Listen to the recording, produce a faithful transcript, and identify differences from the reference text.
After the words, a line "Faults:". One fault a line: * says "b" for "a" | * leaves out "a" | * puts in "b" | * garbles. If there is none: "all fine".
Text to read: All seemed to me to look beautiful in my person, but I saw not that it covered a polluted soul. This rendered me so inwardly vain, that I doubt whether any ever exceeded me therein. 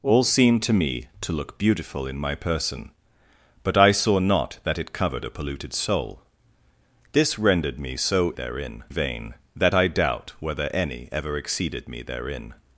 All seemed to me to look beautiful in my person, but I saw not that it covered a polluted soul. This rendered me so therein vain, that I doubt whether any ever exceeded me therein.
Faults:
* says "therein" for "inwardly"